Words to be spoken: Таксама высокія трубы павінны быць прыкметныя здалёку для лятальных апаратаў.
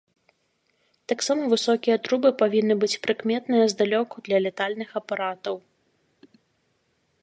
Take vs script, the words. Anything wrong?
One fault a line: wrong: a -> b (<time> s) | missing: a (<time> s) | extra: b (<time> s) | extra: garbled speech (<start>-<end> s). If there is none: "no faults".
no faults